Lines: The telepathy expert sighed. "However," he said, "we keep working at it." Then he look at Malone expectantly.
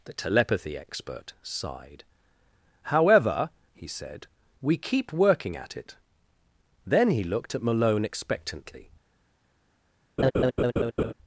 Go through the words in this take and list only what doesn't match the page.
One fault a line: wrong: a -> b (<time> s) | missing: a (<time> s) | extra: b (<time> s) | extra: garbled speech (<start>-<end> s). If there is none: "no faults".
wrong: look -> looked (7.2 s)